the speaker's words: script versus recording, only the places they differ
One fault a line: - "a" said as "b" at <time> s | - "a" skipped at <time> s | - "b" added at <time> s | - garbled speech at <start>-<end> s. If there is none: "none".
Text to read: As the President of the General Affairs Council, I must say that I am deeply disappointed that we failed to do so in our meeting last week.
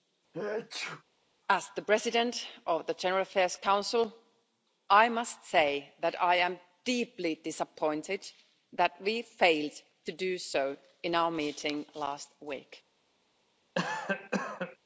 none